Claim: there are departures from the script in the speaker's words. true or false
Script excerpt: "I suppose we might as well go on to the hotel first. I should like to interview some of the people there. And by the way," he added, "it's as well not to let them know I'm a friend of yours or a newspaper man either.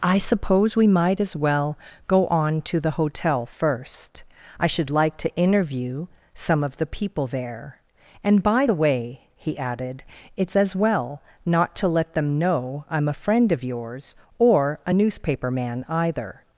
false